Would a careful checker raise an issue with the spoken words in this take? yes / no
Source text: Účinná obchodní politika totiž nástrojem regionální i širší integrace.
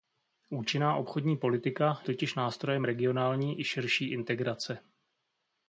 no